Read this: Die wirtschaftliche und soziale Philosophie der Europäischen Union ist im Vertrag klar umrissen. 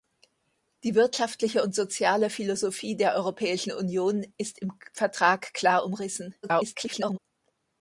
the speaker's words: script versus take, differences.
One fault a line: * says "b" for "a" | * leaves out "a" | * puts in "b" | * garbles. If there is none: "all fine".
* garbles